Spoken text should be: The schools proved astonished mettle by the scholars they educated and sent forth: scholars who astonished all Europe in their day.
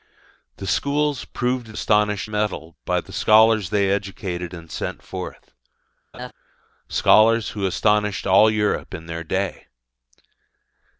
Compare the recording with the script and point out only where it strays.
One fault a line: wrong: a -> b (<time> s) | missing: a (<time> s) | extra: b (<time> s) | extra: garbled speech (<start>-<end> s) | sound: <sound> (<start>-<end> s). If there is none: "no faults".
sound: laugh (6.1-6.3 s)